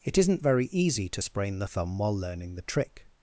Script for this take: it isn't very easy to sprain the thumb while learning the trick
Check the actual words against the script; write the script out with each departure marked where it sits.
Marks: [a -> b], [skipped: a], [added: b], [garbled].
it isn't very easy to sprain the thumb while learning the trick